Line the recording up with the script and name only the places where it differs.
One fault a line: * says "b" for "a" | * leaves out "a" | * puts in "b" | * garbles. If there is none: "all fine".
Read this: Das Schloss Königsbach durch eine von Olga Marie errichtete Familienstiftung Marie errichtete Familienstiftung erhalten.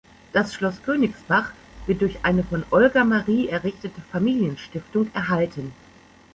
* puts in "wird"
* leaves out "Marie errichtete Familienstiftung"